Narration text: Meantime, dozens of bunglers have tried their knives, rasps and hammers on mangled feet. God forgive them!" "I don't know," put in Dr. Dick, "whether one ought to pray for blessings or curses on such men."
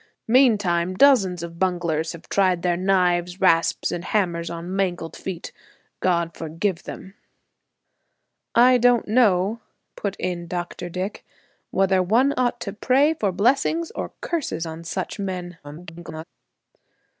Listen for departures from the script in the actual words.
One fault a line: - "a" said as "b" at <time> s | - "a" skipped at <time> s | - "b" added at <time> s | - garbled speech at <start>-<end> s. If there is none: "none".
- garbled speech at 15.6-16.2 s